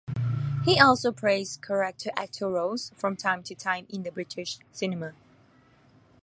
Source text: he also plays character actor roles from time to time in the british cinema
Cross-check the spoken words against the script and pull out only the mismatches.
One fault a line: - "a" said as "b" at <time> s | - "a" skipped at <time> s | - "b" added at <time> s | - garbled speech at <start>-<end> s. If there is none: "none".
none